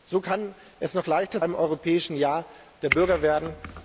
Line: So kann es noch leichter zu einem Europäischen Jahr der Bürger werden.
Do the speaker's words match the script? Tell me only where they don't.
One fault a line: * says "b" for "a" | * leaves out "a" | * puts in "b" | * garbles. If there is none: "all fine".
* leaves out "zu"